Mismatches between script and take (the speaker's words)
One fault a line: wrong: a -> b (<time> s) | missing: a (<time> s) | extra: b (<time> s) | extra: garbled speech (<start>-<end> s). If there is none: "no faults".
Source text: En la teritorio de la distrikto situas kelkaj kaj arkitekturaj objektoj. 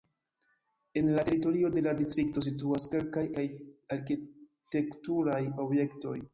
no faults